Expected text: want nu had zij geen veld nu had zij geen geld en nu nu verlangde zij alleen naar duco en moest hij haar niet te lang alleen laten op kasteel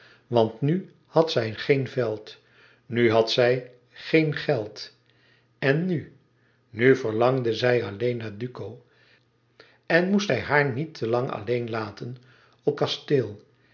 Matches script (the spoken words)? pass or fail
pass